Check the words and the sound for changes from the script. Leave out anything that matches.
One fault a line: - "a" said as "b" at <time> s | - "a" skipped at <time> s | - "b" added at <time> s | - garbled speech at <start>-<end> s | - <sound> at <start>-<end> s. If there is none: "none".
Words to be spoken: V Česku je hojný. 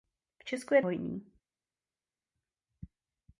none